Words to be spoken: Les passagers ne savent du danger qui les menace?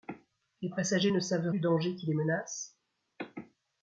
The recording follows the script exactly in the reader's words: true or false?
true